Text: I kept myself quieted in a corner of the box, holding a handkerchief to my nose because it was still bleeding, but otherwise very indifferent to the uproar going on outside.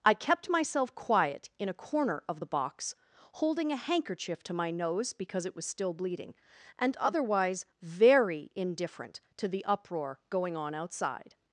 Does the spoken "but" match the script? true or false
false